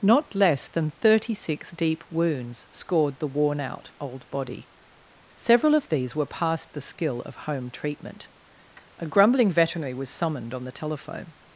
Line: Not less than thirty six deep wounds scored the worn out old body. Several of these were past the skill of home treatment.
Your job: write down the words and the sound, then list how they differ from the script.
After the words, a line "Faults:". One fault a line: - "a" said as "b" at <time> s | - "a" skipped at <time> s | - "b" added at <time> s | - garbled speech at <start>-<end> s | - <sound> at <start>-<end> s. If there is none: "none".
Not less than thirty six deep wounds scored the worn out old body. Several of these were past the skill of home treatment. A grumbling veterinary was summoned on the telephone
Faults:
- "A grumbling veterinary was summoned on the telephone" added at 9.0 s